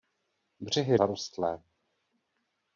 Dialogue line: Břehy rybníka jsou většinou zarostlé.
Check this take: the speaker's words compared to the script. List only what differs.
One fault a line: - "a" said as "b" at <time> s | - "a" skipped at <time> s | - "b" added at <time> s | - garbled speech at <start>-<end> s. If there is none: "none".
- "rybníka jsou většinou" skipped at 1.0 s